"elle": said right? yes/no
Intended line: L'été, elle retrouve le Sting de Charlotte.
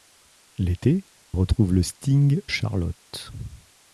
no